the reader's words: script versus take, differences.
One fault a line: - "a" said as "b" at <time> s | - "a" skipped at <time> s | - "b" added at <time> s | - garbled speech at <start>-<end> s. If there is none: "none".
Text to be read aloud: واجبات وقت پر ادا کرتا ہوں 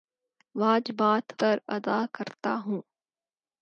- "وقت" skipped at 1.2 s